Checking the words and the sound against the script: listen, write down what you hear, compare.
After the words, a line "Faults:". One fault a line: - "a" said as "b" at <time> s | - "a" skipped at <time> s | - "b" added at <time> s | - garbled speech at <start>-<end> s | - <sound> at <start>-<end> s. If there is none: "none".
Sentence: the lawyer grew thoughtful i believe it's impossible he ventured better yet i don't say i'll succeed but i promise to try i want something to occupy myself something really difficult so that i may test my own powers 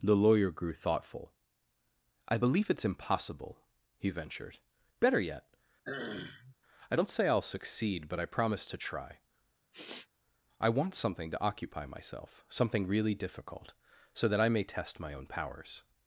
the lawyer grew thoughtful i believe it's impossible he ventured better yet i don't say i'll succeed but i promise to try i want something to occupy myself something really difficult so that i may test my own powers
Faults:
- throat clearing at 5.8-6.6 s
- sniff at 9.7-10.1 s